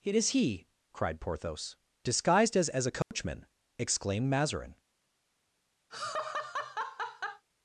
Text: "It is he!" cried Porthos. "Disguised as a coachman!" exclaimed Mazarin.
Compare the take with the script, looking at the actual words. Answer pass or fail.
fail